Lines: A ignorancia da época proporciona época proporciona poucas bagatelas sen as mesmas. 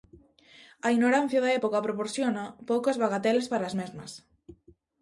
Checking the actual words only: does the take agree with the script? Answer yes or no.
no